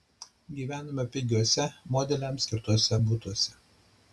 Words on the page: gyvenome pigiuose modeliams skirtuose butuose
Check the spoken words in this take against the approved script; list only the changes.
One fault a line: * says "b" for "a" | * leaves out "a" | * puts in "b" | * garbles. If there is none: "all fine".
all fine